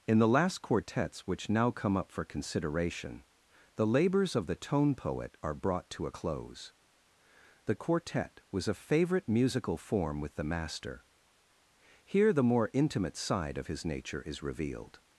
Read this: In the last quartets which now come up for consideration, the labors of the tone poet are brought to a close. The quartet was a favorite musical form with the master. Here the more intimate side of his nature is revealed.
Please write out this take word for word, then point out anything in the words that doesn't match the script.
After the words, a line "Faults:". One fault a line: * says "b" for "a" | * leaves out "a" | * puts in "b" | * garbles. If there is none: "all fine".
In the last quartets which now come up for consideration, the labors of the tone poet are brought to a close. The quartet was a favorite musical form with the master. Here the more intimate side of his nature is revealed.
Faults:
all fine